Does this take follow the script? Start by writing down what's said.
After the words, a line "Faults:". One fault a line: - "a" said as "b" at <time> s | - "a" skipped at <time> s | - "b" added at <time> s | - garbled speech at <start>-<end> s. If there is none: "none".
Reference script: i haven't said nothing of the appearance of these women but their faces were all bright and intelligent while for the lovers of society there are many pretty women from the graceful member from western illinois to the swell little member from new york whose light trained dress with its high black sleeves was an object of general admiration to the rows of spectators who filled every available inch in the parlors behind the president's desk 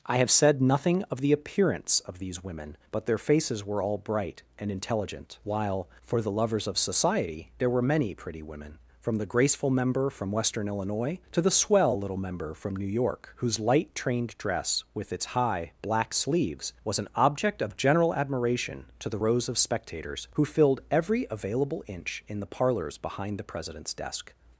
i have said nothing of the appearance of these women but their faces were all bright and intelligent while for the lovers of society there were many pretty women from the graceful member from western illinois to the swell little member from new york whose light trained dress with its high black sleeves was an object of general admiration to the rows of spectators who filled every available inch in the parlors behind the president's desk
Faults:
- "haven't" said as "have" at 0.2 s
- "are" said as "were" at 7.7 s